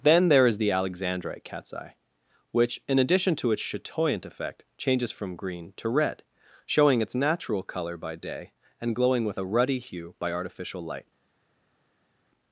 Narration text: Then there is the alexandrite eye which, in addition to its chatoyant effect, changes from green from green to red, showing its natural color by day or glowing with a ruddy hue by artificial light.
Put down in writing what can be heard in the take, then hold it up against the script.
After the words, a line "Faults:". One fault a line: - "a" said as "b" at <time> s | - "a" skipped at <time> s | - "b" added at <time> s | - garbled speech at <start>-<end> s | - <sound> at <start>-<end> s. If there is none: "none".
Then there is the alexandrite cat's eye which, in addition to its chatoyant effect, changes from green to red, showing its natural color by day and glowing with a ruddy hue by artificial light.
Faults:
- "cat's" added at 1.4 s
- "from green" skipped at 5.7 s
- "or" said as "and" at 8.8 s